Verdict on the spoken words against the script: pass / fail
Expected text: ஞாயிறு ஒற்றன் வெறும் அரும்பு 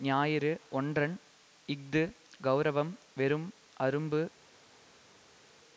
fail